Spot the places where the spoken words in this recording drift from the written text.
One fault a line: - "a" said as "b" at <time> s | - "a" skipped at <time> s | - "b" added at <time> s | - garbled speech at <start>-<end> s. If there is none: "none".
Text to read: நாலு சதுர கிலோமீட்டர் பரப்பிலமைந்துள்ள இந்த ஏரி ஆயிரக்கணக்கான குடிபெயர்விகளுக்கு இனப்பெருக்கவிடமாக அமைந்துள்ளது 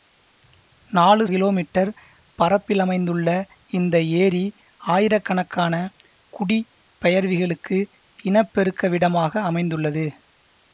- "சதுர" skipped at 1.2 s